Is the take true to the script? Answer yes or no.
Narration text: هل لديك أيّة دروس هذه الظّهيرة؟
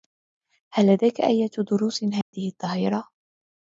yes